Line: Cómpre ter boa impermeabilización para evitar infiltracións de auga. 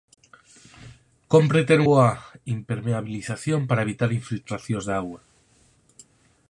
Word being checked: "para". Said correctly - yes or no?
yes